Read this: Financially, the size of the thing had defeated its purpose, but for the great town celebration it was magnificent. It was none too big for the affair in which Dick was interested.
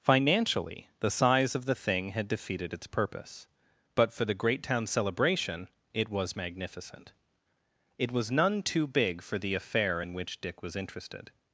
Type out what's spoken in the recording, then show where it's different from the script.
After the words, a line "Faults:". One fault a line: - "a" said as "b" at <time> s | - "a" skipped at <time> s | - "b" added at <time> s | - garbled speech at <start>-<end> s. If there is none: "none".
Financially, the size of the thing had defeated its purpose, but for the great town celebration it was magnificent. It was none too big for the affair in which Dick was interested.
Faults:
none